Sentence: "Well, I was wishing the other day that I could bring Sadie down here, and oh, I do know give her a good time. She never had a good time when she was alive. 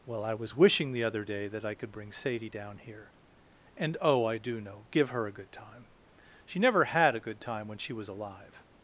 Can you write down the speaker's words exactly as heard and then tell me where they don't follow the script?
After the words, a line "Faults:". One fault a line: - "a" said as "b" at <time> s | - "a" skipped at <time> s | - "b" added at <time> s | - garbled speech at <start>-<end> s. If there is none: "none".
"Well, I was wishing the other day that I could bring Sadie down here, and oh, I do know give her a good time. She never had a good time when she was alive.
Faults:
none